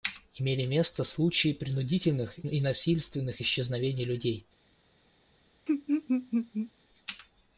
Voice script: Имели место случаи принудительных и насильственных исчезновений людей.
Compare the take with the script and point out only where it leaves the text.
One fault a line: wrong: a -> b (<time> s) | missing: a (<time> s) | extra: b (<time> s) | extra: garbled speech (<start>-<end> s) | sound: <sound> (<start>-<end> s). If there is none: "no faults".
sound: laugh (5.7-6.7 s)